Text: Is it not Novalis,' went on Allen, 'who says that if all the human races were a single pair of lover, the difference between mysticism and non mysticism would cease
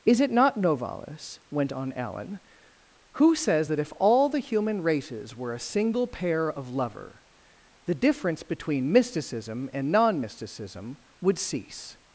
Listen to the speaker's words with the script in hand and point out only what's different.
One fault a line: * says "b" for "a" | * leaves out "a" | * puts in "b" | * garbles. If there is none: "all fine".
all fine